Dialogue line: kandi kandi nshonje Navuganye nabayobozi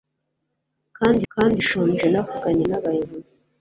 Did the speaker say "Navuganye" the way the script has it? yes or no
yes